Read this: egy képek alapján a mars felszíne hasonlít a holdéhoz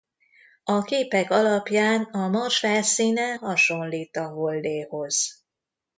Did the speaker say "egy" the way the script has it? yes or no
no